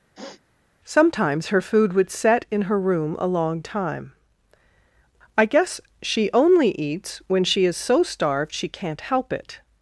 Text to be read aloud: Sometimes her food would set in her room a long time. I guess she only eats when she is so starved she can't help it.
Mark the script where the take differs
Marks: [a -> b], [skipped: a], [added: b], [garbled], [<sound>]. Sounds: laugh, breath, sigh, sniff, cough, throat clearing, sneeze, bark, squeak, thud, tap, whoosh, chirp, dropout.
[sniff] Sometimes her food would set in her room a long time. I guess she only eats when she is so starved she can't help it.